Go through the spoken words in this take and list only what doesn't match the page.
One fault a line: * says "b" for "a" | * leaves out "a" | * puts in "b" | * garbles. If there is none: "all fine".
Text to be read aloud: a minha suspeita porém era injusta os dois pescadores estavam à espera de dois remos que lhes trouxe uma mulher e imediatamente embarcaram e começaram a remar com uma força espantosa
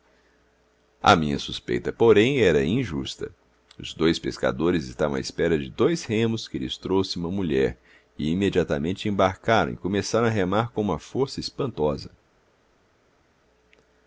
all fine